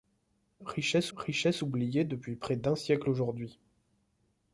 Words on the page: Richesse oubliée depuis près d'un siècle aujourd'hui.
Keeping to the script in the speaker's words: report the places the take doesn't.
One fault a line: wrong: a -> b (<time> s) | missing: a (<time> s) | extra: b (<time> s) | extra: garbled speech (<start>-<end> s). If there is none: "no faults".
extra: richesse (1.2 s)